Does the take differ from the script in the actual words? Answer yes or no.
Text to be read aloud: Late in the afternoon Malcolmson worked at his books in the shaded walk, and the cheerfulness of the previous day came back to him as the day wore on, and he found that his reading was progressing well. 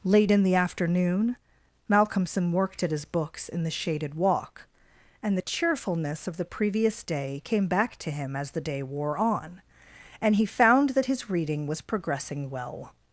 no